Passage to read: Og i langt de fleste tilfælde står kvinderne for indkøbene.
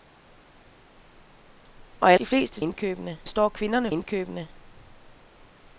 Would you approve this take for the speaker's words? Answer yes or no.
no